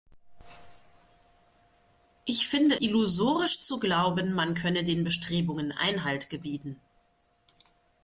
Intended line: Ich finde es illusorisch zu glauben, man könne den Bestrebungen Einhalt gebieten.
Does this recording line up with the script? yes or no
no